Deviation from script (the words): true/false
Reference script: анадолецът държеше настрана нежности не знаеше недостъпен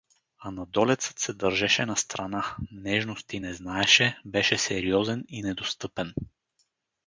true